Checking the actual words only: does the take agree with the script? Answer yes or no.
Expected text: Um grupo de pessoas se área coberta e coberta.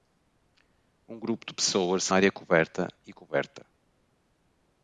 yes